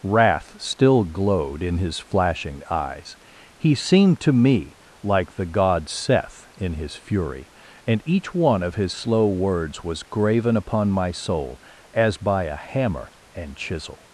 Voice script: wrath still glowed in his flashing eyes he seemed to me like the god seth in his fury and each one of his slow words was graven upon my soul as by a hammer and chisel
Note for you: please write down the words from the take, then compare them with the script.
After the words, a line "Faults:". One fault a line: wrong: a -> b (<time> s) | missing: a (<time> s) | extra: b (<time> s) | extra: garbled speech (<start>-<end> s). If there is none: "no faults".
wrath still glowed in his flashing eyes he seemed to me like the god seth in his fury and each one of his slow words was graven upon my soul as by a hammer and chisel
Faults:
no faults